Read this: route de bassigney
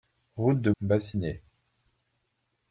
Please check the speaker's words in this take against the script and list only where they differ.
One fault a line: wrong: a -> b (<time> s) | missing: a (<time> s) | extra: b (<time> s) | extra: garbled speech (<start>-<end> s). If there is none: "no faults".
no faults